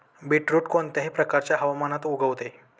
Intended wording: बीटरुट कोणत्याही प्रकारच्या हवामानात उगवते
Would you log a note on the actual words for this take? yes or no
no